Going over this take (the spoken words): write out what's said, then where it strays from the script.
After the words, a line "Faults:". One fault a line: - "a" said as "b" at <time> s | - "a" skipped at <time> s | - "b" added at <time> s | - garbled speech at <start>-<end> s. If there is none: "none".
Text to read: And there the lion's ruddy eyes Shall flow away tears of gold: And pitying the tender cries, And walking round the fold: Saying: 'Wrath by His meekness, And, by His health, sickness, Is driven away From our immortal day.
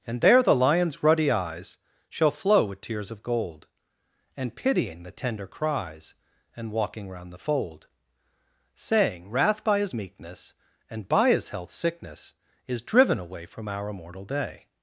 And there the lion's ruddy eyes Shall flow with tears of gold: And pitying the tender cries, And walking round the fold: Saying: 'Wrath by His meekness, And, by His health, sickness, Is driven away From our immortal day.
Faults:
- "away" said as "with" at 2.6 s